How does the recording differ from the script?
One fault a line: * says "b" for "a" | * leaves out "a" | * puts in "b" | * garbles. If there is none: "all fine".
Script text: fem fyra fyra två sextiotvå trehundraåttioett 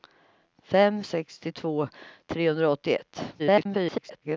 * leaves out "fyra fyra två"
* garbles